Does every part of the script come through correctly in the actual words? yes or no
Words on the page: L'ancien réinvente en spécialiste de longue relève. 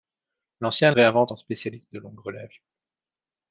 yes